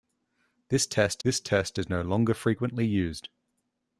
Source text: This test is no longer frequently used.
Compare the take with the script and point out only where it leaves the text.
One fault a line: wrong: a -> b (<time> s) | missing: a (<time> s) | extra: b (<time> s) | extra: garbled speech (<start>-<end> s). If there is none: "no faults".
extra: this test (1.2 s)